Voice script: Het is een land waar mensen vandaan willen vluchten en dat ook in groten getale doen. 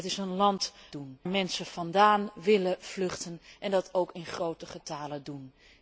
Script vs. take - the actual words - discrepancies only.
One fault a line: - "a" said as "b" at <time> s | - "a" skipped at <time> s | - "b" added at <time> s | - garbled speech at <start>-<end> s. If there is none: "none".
- "waar" said as "doen" at 0.9 s